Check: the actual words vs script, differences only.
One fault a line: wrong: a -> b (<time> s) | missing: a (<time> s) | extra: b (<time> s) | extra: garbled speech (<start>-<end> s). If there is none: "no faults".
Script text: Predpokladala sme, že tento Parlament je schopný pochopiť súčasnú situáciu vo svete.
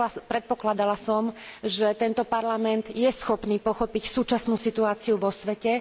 wrong: sme -> som (1.0 s)